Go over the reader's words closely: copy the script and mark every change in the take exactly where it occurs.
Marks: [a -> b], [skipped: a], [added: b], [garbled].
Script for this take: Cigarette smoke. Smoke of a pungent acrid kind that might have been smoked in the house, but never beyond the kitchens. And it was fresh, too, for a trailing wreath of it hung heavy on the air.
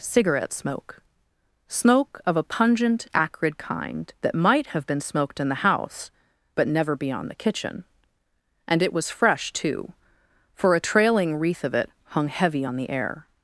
Cigarette smoke. Smoke of a pungent acrid kind that might have been smoked in the house, but never beyond the [kitchens. -> kitchen] And it was fresh, too, for a trailing wreath of it hung heavy on the air.